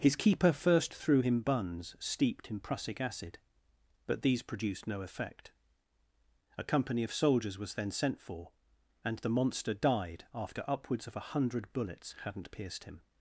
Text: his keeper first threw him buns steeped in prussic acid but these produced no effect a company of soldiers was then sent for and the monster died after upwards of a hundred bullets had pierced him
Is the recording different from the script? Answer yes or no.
yes